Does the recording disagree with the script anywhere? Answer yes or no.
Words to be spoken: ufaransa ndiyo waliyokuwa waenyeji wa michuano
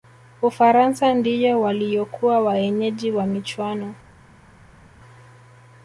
no